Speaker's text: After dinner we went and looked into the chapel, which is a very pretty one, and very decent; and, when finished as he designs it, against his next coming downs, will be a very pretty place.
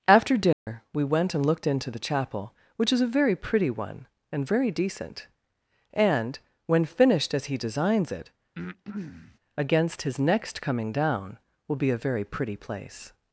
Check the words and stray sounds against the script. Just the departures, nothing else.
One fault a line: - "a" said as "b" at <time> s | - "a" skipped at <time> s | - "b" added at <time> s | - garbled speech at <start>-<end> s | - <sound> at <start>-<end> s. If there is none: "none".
- dropout at 0.5-0.7 s
- breath at 8.6-9.4 s
- "downs" said as "down" at 10.9 s